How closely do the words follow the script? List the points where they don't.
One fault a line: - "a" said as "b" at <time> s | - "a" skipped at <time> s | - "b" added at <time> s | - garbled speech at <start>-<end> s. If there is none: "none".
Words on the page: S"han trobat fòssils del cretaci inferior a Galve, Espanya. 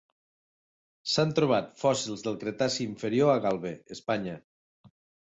none